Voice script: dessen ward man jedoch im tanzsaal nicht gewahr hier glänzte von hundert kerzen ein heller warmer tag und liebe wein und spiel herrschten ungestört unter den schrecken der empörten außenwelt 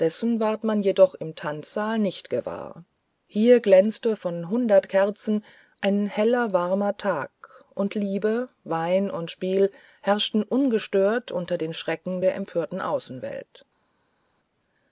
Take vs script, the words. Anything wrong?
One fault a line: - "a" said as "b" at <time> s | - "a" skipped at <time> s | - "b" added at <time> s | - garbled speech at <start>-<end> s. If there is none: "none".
none